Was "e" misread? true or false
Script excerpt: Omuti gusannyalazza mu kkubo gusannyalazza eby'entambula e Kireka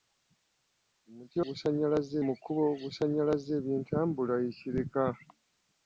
false